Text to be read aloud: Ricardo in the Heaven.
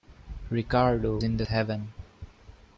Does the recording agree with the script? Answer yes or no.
yes